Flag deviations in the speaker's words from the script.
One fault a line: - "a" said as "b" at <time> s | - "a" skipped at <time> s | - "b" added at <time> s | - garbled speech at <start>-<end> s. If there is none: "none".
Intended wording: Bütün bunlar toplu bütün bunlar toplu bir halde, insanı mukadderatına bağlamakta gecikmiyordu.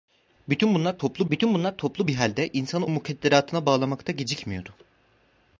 none